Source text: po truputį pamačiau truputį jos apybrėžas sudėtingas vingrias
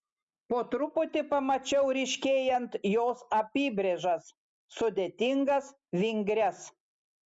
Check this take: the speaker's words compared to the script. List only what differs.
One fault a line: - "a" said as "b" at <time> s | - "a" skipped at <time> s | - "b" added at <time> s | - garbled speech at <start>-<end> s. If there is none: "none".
- "truputį" said as "ryškėjant" at 2.0 s